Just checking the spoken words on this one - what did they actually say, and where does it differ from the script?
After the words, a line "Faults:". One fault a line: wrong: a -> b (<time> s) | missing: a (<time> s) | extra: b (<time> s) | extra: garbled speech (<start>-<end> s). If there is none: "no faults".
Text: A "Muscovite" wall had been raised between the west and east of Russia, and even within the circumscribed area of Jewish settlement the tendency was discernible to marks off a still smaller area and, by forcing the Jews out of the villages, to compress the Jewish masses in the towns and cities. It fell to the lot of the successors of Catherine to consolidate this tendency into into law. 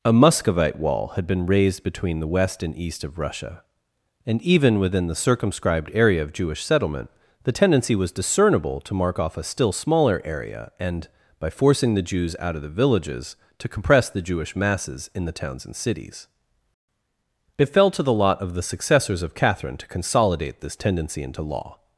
A "Muscovite" wall had been raised between the west and east of Russia, and even within the circumscribed area of Jewish settlement the tendency was discernible to mark off a still smaller area and, by forcing the Jews out of the villages, to compress the Jewish masses in the towns and cities. It fell to the lot of the successors of Catherine to consolidate this tendency into law.
Faults:
wrong: marks -> mark (8.9 s)
missing: into (21.4 s)